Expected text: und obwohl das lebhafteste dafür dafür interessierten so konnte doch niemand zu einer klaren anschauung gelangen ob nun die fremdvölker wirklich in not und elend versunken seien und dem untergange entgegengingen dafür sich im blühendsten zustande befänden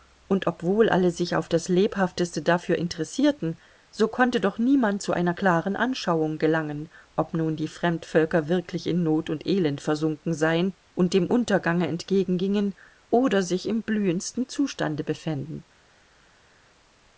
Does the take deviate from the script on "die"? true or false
false